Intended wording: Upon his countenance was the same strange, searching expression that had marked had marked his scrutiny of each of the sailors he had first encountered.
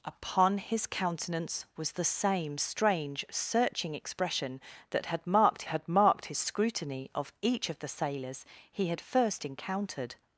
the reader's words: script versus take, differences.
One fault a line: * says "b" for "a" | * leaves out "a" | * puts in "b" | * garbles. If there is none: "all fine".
all fine